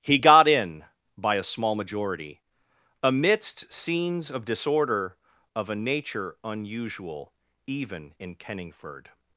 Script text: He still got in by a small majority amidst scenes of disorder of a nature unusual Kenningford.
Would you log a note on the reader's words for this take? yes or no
yes